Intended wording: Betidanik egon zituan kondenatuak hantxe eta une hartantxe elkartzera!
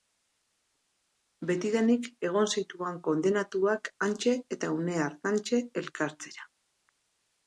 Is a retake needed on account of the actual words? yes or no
no